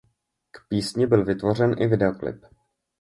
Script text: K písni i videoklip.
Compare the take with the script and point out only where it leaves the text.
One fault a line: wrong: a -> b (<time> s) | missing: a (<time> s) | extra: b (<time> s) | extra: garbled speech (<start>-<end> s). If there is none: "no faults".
extra: byl vytvořen (1.0 s)